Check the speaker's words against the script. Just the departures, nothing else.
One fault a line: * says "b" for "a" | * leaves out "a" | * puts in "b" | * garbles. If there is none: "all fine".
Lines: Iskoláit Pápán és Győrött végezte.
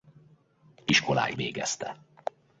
* leaves out "Pápán és Győrött"